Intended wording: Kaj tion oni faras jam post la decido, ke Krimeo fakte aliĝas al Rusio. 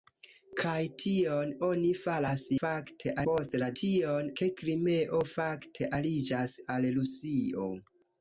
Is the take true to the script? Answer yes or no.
no